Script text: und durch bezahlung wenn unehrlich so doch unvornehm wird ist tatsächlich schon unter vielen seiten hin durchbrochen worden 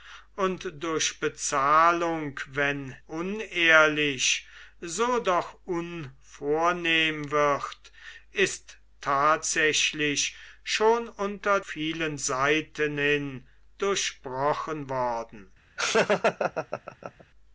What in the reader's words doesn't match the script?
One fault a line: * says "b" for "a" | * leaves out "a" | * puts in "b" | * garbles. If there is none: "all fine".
all fine